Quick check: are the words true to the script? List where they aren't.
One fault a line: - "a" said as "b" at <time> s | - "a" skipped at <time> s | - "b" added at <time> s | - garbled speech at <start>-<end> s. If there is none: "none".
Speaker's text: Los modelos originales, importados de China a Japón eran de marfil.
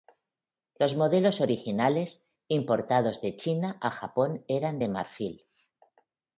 none